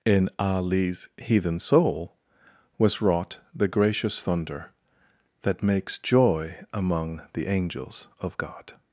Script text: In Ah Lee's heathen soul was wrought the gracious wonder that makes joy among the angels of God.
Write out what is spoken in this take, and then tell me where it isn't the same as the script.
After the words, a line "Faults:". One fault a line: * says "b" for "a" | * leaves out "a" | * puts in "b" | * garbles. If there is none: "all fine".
In Ah Lee's heathen soul was wrought the gracious thunder that makes joy among the angels of God.
Faults:
* says "thunder" for "wonder"